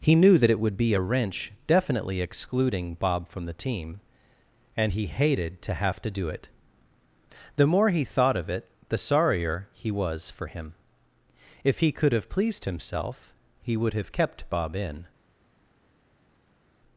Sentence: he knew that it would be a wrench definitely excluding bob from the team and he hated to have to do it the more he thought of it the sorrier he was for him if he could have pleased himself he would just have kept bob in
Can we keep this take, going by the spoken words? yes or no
no